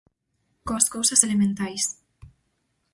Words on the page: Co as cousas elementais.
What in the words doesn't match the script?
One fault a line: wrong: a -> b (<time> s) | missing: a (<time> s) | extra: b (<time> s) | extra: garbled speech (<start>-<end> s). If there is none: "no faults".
no faults